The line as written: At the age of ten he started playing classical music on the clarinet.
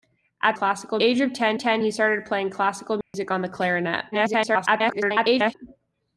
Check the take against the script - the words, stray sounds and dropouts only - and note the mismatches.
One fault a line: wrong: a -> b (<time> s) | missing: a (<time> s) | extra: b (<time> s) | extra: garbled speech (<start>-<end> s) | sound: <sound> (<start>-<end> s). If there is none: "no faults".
wrong: the -> classical (0.5 s)
extra: ten (1.6 s)
sound: dropout (3.0-3.1 s)
extra: garbled speech (4.1-5.5 s)